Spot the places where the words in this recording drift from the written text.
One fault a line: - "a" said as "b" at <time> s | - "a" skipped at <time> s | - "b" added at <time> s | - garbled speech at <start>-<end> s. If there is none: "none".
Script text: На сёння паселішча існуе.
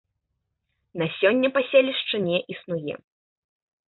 - "не" added at 2.3 s